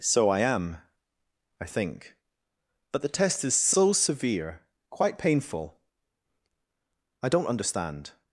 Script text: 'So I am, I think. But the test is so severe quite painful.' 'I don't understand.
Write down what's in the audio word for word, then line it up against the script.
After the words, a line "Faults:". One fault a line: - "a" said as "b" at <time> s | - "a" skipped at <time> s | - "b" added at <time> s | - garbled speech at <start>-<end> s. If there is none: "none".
'So I am, I think. But the test is so severe quite painful.' 'I don't understand.
Faults:
none